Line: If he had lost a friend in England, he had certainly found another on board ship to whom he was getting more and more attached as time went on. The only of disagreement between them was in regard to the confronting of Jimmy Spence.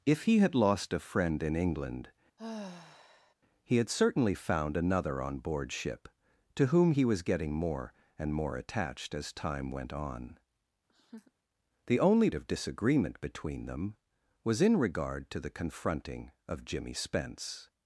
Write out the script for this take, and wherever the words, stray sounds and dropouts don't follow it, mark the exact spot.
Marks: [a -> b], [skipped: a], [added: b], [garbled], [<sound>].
If he had lost a friend in England, [sigh] he had certainly found another on board ship to whom he was getting more and more attached as time went on. [laugh] The only of disagreement between them was in regard to the confronting of Jimmy Spence.